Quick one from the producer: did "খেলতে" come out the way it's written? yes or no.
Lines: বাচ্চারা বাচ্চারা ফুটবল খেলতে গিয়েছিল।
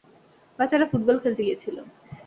yes